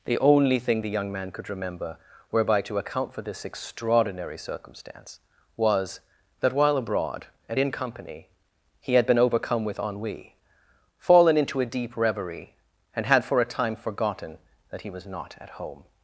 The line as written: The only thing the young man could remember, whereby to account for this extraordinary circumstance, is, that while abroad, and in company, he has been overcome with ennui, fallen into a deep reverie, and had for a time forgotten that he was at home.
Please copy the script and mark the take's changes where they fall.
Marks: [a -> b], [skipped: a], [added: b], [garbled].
The only thing the young man could remember, whereby to account for this extraordinary circumstance, [is, -> was] that while abroad, and in company, he [has -> had] been overcome with ennui, fallen into a deep reverie, and had for a time forgotten that he was [added: not] at home.